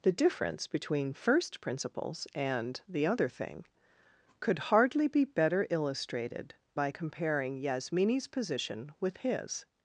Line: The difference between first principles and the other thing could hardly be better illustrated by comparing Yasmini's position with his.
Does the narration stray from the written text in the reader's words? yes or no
no